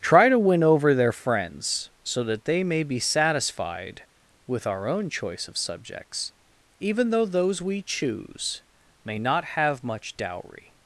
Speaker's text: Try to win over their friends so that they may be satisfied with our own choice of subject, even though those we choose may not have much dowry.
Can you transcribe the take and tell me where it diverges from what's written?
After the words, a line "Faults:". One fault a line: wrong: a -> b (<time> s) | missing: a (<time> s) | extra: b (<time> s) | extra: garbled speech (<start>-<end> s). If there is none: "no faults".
Try to win over their friends so that they may be satisfied with our own choice of subjects, even though those we choose may not have much dowry.
Faults:
wrong: subject -> subjects (5.6 s)